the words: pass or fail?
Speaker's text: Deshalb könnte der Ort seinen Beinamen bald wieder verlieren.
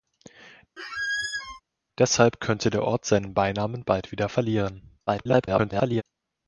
fail